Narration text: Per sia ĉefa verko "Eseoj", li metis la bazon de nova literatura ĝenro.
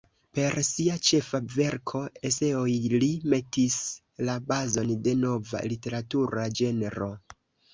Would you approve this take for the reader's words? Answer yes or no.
yes